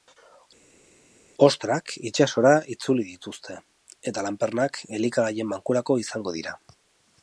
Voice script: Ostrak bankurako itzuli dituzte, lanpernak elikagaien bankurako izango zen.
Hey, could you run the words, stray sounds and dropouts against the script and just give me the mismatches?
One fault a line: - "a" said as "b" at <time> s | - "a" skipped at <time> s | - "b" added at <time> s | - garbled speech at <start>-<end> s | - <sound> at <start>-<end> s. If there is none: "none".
- "bankurako" said as "itsasora" at 2.1 s
- "eta" added at 4.1 s
- "zen" said as "dira" at 6.4 s